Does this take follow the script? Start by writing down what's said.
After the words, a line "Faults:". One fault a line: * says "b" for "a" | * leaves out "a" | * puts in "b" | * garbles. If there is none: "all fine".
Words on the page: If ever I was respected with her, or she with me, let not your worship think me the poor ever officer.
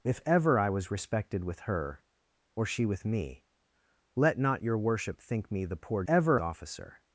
If ever I was respected with her, or she with me, let not your worship think me the poor ever officer.
Faults:
all fine